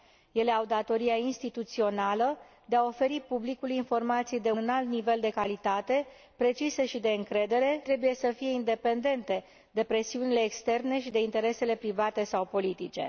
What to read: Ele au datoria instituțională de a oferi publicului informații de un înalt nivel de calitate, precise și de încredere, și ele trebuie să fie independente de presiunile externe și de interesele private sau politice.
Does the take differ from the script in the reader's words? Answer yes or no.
yes